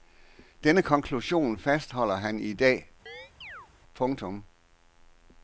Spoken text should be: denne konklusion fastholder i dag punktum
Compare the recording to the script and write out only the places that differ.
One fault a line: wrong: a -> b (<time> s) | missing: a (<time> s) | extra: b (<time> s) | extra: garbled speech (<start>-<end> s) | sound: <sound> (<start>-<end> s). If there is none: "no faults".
extra: han (2.1 s)
sound: chirp (3.1-3.7 s)